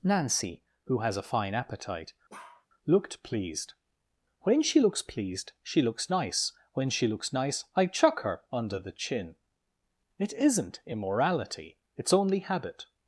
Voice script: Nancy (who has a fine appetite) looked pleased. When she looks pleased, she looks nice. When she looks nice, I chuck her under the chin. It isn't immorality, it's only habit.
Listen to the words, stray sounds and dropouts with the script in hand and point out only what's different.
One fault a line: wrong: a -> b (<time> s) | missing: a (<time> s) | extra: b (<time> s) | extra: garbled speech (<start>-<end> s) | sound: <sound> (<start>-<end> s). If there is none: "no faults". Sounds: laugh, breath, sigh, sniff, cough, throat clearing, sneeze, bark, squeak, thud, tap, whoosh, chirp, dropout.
sound: bark (2.3-2.7 s)